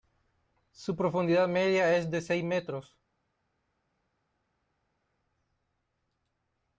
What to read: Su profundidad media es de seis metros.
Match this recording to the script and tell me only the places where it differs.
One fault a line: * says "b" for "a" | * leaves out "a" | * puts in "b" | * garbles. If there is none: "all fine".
all fine